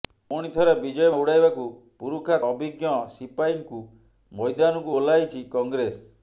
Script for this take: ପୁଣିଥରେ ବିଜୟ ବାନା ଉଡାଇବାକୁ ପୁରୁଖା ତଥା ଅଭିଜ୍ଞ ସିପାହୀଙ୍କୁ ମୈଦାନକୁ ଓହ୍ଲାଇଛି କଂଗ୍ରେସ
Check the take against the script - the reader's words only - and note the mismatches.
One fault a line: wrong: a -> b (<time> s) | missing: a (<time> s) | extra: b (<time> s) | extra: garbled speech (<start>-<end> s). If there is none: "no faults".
missing: ବାନା (1.1 s)
missing: ତଥା (2.4 s)